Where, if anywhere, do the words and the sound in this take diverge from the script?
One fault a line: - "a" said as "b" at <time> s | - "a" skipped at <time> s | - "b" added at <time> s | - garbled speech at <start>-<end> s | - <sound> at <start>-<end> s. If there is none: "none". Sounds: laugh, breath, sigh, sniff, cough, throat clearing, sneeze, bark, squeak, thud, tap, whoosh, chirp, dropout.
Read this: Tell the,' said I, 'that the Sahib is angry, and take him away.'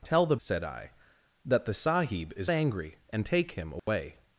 - dropout at 3.8-3.9 s